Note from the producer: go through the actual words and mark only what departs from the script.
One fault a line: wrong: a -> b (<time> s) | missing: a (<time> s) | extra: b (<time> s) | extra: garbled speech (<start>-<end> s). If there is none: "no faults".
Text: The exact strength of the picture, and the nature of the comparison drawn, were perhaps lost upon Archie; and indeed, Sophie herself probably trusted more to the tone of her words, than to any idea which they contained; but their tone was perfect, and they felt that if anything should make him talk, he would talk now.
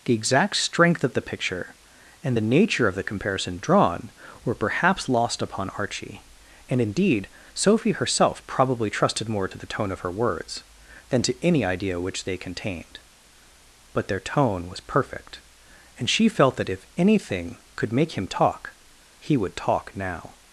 wrong: they -> she (16.1 s)
wrong: should -> could (17.7 s)